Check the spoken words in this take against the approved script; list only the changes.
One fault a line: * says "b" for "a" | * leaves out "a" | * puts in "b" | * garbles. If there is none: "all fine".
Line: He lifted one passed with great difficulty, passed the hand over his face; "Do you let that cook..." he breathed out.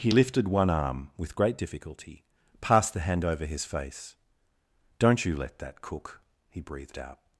* says "arm" for "passed"
* says "Don't" for "Do"